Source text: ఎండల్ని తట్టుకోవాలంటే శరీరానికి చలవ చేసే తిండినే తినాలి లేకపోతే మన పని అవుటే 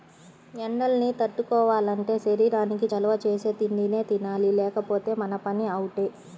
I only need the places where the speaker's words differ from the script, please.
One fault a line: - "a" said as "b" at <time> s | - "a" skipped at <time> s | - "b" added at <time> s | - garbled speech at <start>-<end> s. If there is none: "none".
none